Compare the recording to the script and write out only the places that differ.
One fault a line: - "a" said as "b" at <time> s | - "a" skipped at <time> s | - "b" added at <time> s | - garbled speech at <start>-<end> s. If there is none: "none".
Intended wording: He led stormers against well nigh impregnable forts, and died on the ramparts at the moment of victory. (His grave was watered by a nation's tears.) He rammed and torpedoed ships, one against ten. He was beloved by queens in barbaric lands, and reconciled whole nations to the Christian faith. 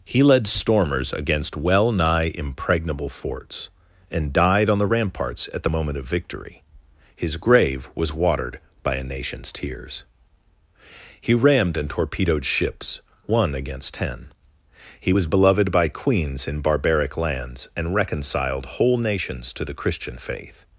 none